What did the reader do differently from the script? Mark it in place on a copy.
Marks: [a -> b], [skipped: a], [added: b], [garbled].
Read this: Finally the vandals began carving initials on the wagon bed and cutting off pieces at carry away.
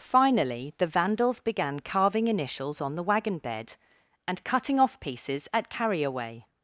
Finally the vandals began carving initials on the wagon bed and cutting off pieces at carry away.